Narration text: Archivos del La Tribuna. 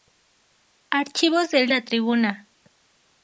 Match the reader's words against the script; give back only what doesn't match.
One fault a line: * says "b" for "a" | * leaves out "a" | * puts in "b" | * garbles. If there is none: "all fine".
all fine